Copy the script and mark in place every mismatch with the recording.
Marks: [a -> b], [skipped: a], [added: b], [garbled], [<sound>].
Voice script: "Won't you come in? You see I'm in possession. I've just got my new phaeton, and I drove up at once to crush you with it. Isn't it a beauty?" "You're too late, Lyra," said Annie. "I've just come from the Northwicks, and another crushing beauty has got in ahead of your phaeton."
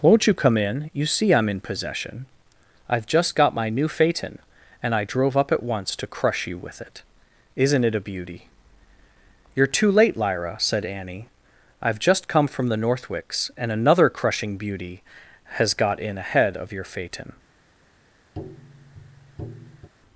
"Won't you come in? You see I'm in possession. I've just got my new phaeton, and I drove up at once to crush you with it. Isn't it a beauty?" "You're too late, Lyra," said Annie. "I've just come from the Northwicks, and another crushing beauty has got in ahead of your phaeton." [tap]